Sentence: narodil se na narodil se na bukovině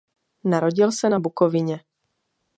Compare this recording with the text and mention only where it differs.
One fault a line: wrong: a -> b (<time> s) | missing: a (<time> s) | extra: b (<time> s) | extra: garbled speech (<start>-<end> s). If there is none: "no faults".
missing: narodil se na (1.2 s)